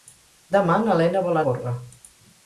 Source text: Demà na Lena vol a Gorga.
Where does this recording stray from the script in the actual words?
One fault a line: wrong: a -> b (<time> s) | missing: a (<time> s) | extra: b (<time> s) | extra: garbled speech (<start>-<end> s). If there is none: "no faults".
no faults